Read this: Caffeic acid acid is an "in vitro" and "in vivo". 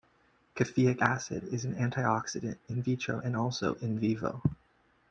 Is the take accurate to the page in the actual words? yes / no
no